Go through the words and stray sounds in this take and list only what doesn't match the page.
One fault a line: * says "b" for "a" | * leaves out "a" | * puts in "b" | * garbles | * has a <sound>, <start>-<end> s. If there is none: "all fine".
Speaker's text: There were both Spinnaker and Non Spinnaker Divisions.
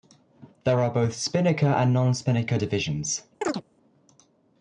* says "are" for "were"
* has a chirp, 3.4-3.6 s